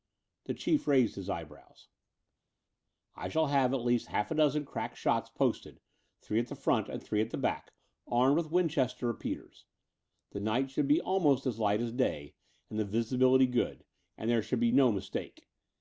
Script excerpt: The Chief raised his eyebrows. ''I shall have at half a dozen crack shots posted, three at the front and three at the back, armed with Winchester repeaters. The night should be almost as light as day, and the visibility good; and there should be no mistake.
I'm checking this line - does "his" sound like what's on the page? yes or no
yes